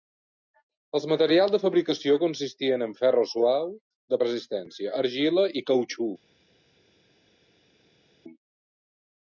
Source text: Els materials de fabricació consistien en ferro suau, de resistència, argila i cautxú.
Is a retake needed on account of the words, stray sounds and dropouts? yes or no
no